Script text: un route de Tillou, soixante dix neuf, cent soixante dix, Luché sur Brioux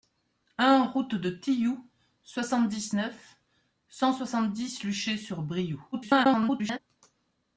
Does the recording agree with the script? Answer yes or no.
no